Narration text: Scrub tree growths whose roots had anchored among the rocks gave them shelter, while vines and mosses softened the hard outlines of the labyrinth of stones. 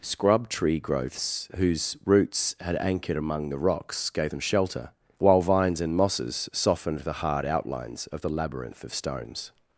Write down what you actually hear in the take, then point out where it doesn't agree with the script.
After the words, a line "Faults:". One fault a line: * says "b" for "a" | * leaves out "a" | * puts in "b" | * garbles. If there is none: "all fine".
Scrub tree growths whose roots had anchored among the rocks gave them shelter, while vines and mosses softened the hard outlines of the labyrinth of stones.
Faults:
all fine